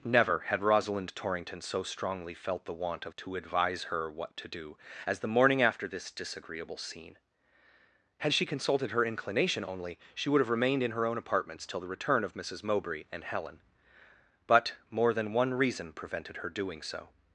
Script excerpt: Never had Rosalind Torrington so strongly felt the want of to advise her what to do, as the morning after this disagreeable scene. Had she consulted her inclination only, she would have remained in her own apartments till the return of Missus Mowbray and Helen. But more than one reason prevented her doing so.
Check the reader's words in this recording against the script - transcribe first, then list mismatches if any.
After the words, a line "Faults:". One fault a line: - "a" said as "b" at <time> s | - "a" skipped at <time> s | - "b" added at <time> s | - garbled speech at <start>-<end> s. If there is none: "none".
Never had Rosalind Torrington so strongly felt the want of to advise her what to do, as the morning after this disagreeable scene. Had she consulted her inclination only, she would have remained in her own apartments till the return of Missus Mowbray and Helen. But more than one reason prevented her doing so.
Faults:
none